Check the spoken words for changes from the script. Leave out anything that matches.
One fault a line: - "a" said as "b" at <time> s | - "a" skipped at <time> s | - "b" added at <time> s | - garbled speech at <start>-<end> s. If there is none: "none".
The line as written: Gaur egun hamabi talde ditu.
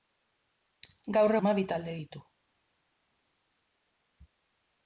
- "egun" skipped at 1.3 s